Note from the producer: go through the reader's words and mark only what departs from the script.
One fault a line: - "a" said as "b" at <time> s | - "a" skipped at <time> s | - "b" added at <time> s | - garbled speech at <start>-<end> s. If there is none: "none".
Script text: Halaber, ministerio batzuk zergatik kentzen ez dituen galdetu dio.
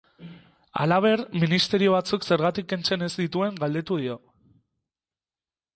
none